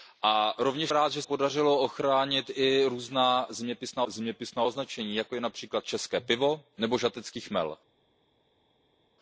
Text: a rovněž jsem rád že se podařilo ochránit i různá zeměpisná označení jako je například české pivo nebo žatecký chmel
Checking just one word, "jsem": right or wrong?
wrong